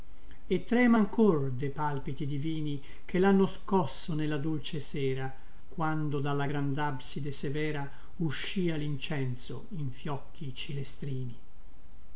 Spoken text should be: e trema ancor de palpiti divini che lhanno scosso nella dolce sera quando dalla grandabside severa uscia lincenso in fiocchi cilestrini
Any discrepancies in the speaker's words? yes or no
no